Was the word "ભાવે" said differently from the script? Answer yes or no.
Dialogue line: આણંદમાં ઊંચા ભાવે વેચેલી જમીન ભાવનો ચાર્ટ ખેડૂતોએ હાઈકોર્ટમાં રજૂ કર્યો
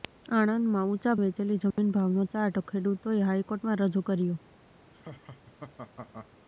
yes